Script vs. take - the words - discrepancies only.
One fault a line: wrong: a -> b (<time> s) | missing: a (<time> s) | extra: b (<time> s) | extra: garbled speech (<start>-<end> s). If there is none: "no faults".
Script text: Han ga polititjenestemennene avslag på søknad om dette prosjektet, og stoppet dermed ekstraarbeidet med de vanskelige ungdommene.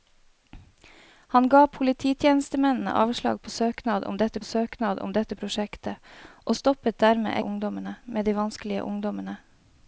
extra: søknad om dette (4.4 s)
wrong: ekstraarbeidet -> ungdommene (7.4 s)